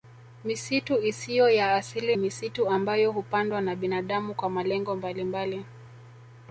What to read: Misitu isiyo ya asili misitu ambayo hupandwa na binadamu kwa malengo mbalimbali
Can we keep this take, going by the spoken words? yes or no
yes